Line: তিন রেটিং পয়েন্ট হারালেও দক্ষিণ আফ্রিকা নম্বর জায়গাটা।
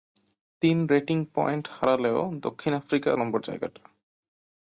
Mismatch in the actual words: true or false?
false